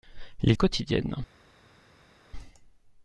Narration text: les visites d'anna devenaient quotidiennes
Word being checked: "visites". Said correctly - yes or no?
no